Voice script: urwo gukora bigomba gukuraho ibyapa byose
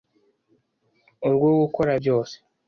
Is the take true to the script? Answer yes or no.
no